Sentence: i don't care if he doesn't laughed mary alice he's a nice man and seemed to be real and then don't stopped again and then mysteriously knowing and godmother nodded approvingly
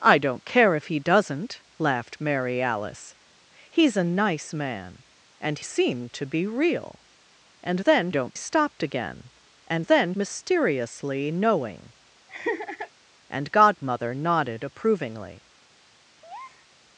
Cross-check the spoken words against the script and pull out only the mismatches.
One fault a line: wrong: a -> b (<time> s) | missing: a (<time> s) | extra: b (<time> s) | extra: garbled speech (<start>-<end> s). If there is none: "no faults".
no faults